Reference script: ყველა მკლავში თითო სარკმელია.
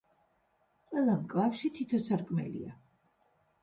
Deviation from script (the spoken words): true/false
false